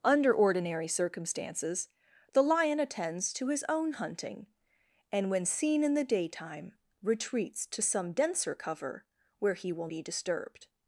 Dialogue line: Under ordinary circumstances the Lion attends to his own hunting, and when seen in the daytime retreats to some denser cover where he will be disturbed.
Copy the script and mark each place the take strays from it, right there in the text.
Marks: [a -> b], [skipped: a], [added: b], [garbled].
Under ordinary circumstances the Lion attends to his own hunting, and when seen in the daytime retreats to some denser cover where he will be disturbed.